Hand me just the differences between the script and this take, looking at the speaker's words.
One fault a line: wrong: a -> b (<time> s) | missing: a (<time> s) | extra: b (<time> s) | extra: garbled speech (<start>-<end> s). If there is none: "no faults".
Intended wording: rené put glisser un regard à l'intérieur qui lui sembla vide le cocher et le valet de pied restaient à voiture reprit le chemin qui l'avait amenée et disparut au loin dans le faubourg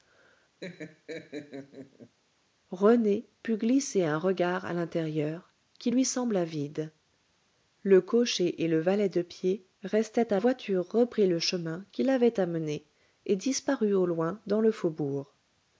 no faults